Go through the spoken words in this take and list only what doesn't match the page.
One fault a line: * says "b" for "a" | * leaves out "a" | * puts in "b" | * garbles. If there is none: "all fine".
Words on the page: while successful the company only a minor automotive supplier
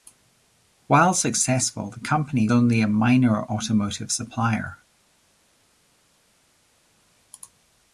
all fine